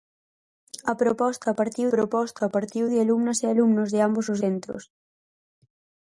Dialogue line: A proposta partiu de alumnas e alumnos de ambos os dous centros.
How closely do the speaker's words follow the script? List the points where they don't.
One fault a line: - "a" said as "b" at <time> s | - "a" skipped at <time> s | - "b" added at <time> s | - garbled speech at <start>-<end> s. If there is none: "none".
- "proposta partiu" added at 1.9 s
- "dous" skipped at 4.4 s